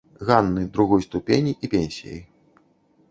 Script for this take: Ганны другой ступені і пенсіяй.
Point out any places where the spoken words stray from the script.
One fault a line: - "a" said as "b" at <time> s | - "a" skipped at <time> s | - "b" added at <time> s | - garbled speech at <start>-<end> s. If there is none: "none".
none